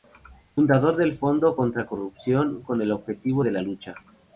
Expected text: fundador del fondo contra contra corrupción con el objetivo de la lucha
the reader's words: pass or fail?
fail